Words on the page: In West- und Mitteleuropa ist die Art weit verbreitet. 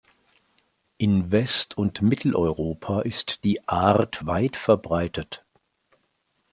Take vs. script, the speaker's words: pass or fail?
pass